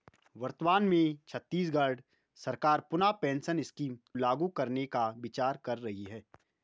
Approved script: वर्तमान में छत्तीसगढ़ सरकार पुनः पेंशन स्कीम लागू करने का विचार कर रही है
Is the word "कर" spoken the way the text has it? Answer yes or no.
yes